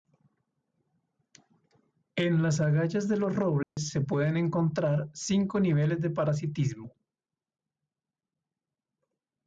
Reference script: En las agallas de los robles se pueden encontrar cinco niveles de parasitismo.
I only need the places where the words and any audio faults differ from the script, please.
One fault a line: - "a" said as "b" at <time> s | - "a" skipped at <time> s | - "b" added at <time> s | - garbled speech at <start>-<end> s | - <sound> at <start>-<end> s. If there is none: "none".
- dropout at 3.6-3.8 s